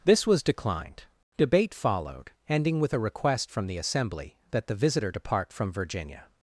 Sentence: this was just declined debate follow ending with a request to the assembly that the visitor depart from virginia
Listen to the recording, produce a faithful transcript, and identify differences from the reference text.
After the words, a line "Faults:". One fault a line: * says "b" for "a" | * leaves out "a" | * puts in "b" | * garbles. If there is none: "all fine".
this was declined debate followed ending with a request from the assembly that the visitor depart from virginia
Faults:
* leaves out "just"
* says "followed" for "follow"
* says "from" for "to"